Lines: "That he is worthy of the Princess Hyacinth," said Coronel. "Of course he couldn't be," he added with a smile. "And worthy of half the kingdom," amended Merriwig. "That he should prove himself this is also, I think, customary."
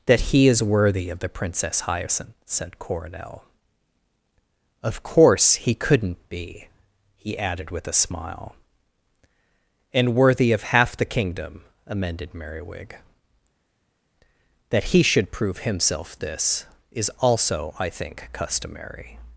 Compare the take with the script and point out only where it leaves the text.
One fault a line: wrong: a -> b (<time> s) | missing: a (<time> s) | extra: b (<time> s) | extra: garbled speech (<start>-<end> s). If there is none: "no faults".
no faults